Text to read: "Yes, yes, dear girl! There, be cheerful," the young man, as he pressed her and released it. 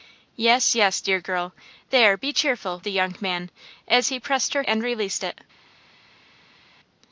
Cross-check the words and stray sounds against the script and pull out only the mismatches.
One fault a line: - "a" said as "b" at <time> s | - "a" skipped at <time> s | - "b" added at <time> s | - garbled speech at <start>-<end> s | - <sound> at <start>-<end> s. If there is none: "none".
none